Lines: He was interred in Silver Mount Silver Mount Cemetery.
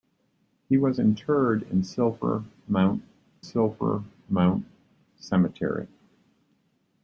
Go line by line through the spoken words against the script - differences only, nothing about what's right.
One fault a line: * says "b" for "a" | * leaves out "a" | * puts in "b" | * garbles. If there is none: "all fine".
all fine